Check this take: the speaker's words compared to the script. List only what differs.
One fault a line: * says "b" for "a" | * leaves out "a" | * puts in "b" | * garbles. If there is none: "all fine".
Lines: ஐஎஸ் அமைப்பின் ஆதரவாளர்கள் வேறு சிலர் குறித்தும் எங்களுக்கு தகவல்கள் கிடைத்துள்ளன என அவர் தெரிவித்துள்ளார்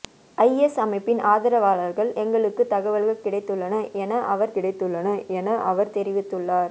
* says "எங்களுக்கு தகவல்கள் கிடைத்துள்ளன என அவர்" for "வேறு சிலர் குறித்தும் எங்களுக்கு தகவல்கள்"